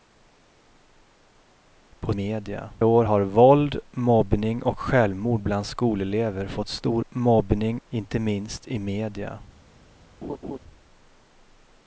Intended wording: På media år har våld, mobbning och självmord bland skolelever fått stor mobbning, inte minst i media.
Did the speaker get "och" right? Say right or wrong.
right